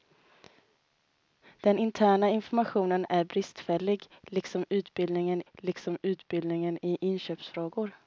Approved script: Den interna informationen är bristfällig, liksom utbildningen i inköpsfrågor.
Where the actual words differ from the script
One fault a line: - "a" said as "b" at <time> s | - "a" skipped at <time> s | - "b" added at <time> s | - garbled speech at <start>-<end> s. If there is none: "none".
- "liksom utbildningen" added at 5.5 s